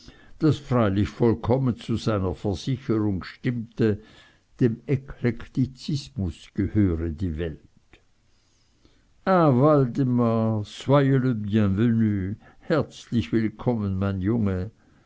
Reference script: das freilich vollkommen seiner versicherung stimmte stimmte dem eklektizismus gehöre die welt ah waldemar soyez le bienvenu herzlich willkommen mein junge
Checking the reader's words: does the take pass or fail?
fail